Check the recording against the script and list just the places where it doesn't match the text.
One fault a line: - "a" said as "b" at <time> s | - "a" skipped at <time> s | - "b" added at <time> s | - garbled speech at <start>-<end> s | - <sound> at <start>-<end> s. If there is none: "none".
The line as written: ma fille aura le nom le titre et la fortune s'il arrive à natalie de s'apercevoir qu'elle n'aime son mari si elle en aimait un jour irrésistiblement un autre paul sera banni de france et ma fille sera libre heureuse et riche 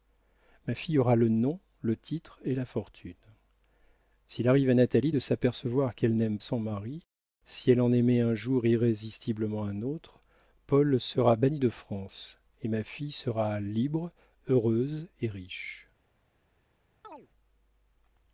- chirp at 17.0-17.3 s